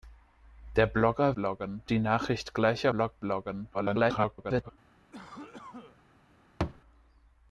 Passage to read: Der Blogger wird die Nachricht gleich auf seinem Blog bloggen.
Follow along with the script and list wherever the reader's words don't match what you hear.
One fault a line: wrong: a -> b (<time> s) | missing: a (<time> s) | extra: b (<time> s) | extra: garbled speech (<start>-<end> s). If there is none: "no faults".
wrong: wird -> bloggen (1.3 s)
missing: auf seinem (2.9 s)
extra: garbled speech (3.7-4.7 s)